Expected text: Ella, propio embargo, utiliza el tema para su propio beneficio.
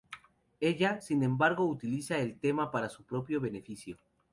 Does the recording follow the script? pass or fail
fail